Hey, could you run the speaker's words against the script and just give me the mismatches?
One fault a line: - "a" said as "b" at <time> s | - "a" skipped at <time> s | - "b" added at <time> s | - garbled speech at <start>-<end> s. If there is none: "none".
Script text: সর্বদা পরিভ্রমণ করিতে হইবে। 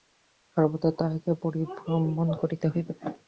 - "তাঁহাকে" added at 1.0 s